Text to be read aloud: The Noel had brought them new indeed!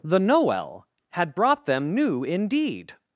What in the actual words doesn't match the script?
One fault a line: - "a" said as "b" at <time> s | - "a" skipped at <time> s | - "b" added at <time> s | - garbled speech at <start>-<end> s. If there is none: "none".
none